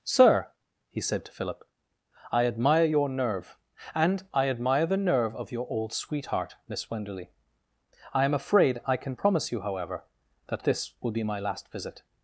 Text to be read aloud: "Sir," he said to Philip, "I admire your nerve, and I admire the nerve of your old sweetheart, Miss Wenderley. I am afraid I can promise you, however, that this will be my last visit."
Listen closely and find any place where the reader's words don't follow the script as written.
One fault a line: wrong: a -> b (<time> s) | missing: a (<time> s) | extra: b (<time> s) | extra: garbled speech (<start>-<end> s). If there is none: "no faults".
no faults